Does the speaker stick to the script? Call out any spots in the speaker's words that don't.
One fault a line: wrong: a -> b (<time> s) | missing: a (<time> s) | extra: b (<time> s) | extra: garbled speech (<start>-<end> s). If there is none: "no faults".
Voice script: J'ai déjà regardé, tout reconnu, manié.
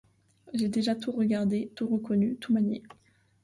extra: tout (0.9 s)
extra: tout (2.4 s)